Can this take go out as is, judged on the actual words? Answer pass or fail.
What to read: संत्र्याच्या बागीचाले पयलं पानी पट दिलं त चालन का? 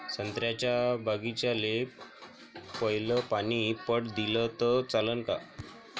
pass